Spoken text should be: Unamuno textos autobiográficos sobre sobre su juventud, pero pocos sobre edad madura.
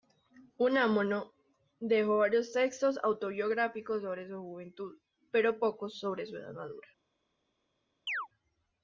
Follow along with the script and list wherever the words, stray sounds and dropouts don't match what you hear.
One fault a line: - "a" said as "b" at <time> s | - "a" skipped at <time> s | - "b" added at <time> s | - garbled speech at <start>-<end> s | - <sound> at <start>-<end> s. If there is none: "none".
- "dejó varios" added at 1.8 s
- "sobre" skipped at 4.3 s
- "su" added at 6.2 s
- chirp at 8.1-8.3 s